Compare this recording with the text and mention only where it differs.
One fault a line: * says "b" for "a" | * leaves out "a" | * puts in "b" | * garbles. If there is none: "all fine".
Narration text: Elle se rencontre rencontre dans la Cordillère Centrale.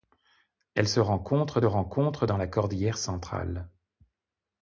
all fine